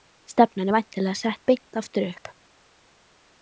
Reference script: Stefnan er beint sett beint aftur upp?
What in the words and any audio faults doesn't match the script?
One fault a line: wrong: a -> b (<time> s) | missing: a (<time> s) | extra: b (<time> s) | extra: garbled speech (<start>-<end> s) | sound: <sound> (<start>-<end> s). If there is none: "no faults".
wrong: beint -> væntanlega (0.8 s)